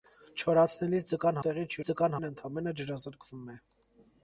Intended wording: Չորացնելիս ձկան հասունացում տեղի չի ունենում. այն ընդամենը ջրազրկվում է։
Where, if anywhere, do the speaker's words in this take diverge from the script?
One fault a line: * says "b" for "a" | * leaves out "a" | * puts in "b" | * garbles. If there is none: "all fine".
* leaves out "հասունացում"
* says "ձկան" for "ունենում"